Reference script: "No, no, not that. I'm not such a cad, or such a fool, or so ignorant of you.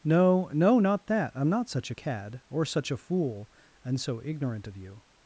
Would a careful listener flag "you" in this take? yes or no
no